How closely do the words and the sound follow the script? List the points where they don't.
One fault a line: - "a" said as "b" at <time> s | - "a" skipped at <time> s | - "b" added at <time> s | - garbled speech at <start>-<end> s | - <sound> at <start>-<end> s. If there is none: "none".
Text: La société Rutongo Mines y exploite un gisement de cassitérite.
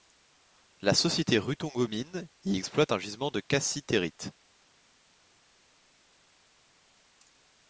none